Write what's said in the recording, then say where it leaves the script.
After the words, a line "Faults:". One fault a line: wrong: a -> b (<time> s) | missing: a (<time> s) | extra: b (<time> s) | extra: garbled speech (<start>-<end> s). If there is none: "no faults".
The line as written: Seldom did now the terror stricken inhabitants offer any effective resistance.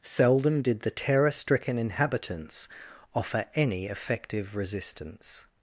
Seldom did the terror stricken inhabitants offer any effective resistance.
Faults:
missing: now (0.8 s)